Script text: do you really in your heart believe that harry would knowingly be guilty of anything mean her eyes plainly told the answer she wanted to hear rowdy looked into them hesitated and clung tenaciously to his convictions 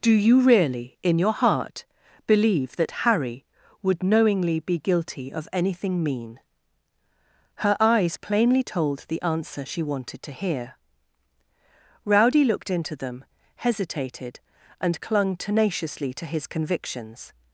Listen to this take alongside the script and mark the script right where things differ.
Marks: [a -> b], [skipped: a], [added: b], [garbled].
do you really in your heart believe that harry would knowingly be guilty of anything mean her eyes plainly told the answer she wanted to hear rowdy looked into them hesitated and clung tenaciously to his convictions